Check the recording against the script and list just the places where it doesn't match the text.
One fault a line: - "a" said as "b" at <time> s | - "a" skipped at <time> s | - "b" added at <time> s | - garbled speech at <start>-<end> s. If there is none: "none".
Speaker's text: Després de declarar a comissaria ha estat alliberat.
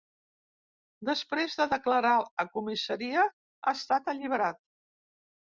none